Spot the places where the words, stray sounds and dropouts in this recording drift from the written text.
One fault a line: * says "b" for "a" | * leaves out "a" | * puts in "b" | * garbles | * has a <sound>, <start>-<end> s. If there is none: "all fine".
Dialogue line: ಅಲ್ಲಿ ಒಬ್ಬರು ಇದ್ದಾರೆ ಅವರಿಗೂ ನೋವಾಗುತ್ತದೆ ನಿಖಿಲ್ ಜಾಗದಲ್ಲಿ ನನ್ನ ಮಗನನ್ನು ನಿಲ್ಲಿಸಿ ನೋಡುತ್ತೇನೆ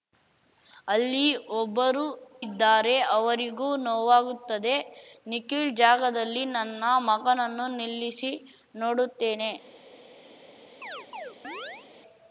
* has a chirp, 10.8-11.9 s